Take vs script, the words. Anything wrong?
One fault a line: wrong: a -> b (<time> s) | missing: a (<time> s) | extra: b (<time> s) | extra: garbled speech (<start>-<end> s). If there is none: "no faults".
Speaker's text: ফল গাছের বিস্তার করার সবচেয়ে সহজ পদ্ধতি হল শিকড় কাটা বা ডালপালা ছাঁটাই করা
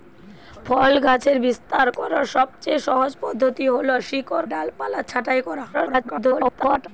missing: কাটা বা (4.5 s)
extra: garbled speech (5.7-6.9 s)